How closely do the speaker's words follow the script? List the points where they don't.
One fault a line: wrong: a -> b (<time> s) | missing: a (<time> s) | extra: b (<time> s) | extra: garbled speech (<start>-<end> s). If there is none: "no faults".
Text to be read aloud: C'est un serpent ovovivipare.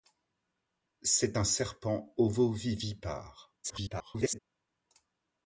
extra: garbled speech (3.6-4.4 s)